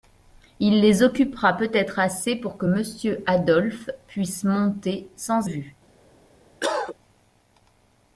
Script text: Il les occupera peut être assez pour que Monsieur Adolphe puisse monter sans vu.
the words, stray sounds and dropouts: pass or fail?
fail